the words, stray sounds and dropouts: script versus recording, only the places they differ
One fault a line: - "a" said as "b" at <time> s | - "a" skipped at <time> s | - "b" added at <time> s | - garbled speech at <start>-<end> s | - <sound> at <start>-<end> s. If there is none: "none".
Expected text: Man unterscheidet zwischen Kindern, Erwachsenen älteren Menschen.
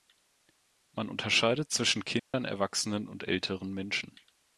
- dropout at 2.2-2.3 s
- "und" added at 3.1 s